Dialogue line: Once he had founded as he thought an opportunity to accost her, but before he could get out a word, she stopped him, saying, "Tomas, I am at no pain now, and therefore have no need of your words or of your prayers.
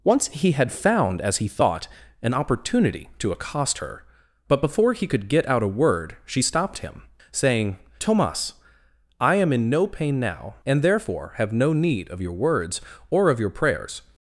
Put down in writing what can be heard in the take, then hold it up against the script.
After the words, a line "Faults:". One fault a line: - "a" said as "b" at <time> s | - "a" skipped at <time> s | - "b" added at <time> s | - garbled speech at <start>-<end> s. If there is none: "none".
Once he had found as he thought an opportunity to accost her, but before he could get out a word, she stopped him, saying, "Tomas, I am in no pain now, and therefore have no need of your words or of your prayers.
Faults:
- "founded" said as "found" at 0.7 s
- "at" said as "in" at 9.5 s